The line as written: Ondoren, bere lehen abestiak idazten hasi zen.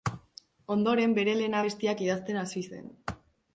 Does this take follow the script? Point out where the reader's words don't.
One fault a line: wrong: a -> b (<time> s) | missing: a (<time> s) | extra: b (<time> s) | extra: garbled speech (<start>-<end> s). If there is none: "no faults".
no faults